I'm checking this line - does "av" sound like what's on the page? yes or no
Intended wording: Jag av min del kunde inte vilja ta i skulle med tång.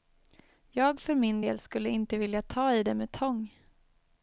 no